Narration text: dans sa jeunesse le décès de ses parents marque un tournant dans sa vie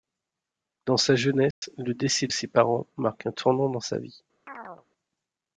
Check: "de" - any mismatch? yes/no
yes